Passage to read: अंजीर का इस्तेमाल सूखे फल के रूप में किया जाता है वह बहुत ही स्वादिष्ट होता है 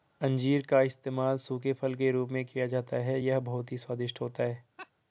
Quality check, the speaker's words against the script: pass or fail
fail